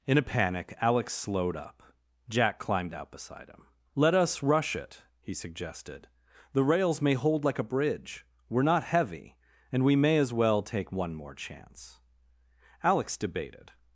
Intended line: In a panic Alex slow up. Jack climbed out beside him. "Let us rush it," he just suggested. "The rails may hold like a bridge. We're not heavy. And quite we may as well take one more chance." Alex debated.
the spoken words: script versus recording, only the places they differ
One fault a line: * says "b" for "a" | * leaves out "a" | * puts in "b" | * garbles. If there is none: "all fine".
* says "slowed" for "slow"
* leaves out "just"
* leaves out "quite"